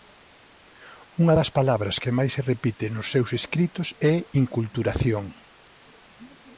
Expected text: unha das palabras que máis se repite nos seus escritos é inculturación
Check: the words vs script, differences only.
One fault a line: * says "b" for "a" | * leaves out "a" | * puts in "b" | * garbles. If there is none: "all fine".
all fine